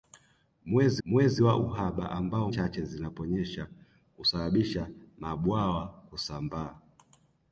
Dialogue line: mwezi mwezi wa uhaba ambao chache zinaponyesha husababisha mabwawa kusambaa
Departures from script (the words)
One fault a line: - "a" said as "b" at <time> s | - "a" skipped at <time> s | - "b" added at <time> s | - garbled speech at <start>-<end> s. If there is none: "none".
none